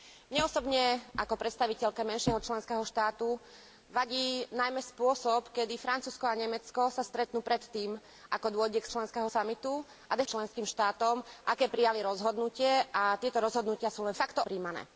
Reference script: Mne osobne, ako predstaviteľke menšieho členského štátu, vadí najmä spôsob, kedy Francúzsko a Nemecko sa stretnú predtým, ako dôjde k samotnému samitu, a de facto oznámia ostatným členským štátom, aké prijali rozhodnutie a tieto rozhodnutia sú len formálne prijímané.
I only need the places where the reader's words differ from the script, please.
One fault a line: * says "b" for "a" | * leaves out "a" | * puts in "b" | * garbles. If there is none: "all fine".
* says "členského" for "samotnému"
* leaves out "facto oznámia ostatným"
* says "facto" for "formálne"